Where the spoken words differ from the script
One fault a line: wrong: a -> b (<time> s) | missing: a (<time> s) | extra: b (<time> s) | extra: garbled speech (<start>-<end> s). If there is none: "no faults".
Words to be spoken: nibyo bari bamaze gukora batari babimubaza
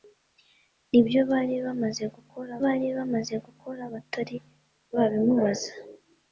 extra: bari bamaze gukora (2.6 s)